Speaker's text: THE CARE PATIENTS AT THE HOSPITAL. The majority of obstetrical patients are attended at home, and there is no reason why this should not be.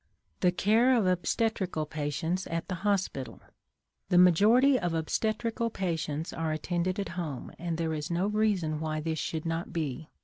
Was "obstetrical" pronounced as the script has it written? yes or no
yes